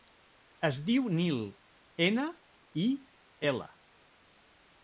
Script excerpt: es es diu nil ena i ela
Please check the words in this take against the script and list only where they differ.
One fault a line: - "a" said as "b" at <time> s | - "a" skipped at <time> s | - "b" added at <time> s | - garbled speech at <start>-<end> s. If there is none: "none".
- "es" skipped at 0.8 s